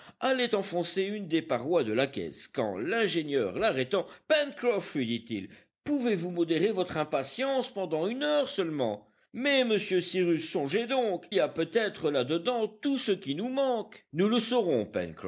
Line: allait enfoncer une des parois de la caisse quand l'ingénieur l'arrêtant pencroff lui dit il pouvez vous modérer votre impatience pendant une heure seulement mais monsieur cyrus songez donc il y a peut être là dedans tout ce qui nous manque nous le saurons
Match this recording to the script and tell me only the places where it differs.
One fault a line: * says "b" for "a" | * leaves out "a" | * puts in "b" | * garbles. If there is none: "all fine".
* leaves out "il"